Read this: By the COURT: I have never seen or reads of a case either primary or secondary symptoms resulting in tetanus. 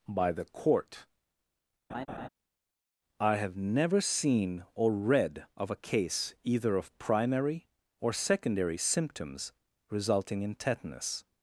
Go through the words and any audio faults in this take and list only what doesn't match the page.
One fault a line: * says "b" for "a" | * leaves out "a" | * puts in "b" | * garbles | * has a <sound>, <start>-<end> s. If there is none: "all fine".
* has a laugh, 1.9-2.3 s
* says "read" for "reads"
* puts in "of"